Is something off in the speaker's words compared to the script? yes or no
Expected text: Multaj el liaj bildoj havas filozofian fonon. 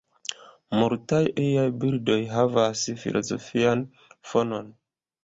yes